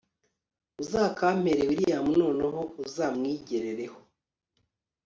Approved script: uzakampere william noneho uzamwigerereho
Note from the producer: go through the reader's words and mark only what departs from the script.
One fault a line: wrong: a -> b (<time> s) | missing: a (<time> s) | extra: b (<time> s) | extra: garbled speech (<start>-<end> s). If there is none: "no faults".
no faults